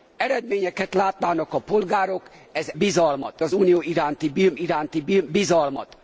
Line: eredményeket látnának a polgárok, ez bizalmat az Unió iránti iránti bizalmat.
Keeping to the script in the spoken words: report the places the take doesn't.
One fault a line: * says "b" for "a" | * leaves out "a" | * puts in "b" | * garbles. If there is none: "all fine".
all fine